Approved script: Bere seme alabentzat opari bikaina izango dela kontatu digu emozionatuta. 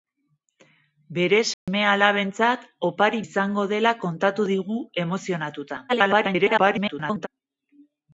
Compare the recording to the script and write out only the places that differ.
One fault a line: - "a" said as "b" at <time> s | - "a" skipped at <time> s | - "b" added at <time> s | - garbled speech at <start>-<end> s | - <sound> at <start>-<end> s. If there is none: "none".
- dropout at 1.5-1.7 s
- "bikaina" skipped at 3.2 s
- garbled speech at 5.9-7.3 s